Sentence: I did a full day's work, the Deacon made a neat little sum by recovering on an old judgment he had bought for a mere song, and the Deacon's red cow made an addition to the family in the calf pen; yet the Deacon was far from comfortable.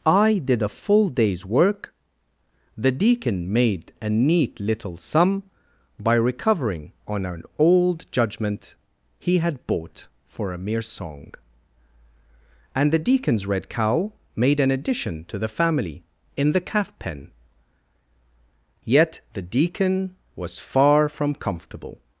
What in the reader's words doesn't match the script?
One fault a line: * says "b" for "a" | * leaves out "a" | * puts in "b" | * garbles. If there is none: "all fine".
all fine